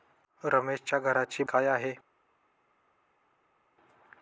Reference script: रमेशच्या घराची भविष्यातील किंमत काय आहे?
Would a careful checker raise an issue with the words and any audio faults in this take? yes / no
yes